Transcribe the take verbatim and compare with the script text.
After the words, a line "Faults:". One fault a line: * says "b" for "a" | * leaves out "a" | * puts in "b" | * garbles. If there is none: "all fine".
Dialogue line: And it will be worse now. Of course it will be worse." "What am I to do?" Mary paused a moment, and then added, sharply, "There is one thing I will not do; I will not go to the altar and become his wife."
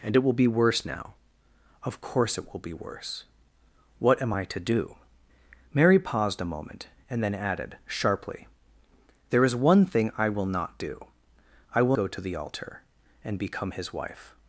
And it will be worse now. Of course it will be worse." "What am I to do?" Mary paused a moment, and then added, sharply, "There is one thing I will not do; I will go to the altar and become his wife."
Faults:
* leaves out "not"